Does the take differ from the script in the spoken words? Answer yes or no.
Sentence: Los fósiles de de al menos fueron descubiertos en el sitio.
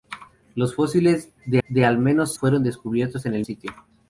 no